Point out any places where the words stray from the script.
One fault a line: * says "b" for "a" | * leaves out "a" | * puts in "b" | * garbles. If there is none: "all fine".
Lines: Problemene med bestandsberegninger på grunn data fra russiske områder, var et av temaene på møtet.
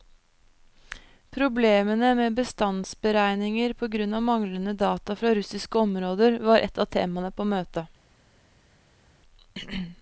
* puts in "av manglende"